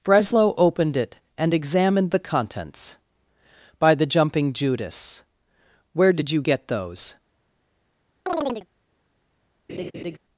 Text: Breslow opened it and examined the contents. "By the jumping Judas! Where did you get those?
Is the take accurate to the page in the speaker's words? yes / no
yes